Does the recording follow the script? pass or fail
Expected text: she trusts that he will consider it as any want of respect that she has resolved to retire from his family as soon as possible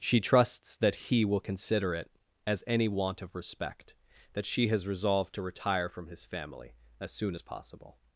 pass